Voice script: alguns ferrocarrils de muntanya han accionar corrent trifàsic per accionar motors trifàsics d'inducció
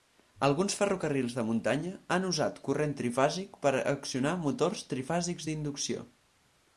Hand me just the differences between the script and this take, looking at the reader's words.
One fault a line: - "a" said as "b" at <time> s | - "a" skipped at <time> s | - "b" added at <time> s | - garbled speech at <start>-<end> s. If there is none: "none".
- "accionar" said as "usat" at 2.3 s